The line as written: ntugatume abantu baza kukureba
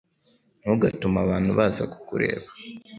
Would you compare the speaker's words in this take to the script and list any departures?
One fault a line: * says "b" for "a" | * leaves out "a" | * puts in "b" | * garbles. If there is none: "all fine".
all fine